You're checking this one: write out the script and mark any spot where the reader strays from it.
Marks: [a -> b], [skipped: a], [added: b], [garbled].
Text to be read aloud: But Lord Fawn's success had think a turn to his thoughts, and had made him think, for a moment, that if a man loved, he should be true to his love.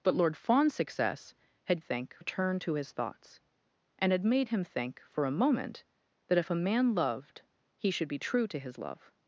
But Lord Fawn's success had think a turn to his thoughts, and had made him think, for a moment, that if a man loved, he should be true to his love.